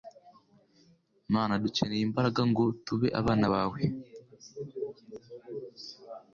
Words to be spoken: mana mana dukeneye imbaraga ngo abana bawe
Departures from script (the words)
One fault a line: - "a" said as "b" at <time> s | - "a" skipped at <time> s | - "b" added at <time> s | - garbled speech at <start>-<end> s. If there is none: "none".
- "mana" skipped at 1.5 s
- "tube" added at 2.8 s